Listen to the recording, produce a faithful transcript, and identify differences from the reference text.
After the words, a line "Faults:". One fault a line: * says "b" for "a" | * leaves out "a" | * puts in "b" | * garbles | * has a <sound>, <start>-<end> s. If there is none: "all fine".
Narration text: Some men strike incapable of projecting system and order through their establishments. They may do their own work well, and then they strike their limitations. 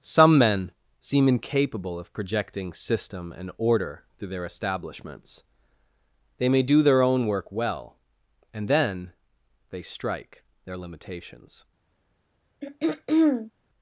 Some men seem incapable of projecting system and order through their establishments. They may do their own work well, and then they strike their limitations.
Faults:
* says "seem" for "strike"
* has a throat clearing, 12.6-13.5 s